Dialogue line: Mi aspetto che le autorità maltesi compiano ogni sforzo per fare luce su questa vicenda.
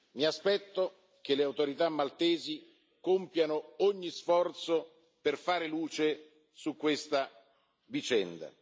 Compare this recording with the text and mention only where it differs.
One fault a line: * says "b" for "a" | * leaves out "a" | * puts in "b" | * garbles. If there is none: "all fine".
all fine